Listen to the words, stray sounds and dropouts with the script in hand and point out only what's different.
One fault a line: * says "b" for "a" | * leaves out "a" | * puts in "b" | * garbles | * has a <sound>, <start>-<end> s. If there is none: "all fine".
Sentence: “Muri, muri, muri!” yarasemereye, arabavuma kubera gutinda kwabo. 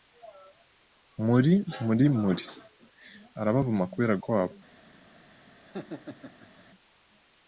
* leaves out "yarasemereye"
* leaves out "gutinda"
* has a laugh, 5.6-6.7 s